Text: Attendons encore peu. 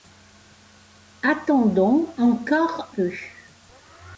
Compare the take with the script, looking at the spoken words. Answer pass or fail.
pass